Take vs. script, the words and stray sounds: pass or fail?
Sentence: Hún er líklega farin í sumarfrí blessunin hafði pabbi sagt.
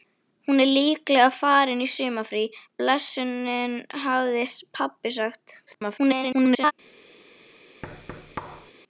fail